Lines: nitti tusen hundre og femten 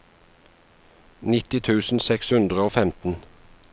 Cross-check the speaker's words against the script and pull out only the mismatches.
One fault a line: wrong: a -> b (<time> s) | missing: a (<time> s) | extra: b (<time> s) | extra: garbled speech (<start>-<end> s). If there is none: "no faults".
extra: seks (2.1 s)